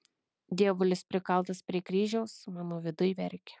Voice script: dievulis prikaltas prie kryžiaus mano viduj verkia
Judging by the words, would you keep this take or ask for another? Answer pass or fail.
pass